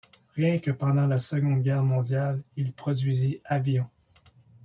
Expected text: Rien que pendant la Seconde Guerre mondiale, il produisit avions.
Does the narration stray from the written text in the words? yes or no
no